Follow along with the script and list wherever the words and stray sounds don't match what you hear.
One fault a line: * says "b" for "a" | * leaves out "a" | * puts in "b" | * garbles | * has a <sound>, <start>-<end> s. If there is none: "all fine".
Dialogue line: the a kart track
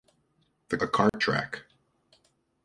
* has a dropout, 1.1-1.1 s